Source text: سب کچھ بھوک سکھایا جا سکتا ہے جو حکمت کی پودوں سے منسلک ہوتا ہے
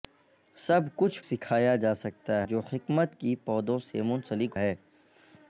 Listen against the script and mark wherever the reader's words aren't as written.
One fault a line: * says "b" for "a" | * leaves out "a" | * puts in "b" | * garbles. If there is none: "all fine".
* leaves out "بھوک"
* leaves out "ہے"
* leaves out "ہوتا"